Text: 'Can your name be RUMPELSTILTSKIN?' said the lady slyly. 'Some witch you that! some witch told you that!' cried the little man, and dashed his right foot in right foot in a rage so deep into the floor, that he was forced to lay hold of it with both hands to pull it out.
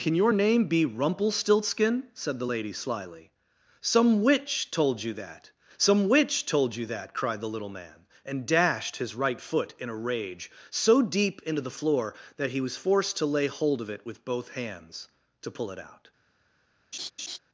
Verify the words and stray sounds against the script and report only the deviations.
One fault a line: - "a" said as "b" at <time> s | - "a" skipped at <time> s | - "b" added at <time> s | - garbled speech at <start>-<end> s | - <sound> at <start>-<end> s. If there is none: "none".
- "told" added at 4.7 s
- "right foot in" skipped at 9.9 s
- laugh at 16.9-17.4 s